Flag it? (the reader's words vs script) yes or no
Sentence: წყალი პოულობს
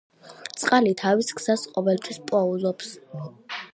yes